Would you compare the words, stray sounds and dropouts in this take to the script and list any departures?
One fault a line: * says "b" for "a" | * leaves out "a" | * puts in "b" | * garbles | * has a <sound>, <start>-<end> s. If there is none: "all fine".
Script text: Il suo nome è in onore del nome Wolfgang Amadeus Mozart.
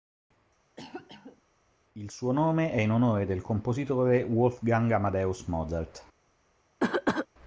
* has a cough, 0.8-1.4 s
* says "compositore" for "nome"
* has a cough, 6.8-7.3 s